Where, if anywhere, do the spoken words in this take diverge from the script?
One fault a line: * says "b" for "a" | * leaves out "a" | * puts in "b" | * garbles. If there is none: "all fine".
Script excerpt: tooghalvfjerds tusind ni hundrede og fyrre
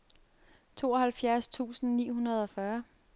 all fine